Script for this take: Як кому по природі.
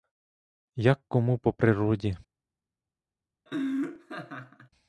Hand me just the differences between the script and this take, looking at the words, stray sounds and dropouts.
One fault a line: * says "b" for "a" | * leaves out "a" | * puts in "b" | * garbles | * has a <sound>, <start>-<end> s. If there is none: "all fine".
* has a laugh, 3.5-4.7 s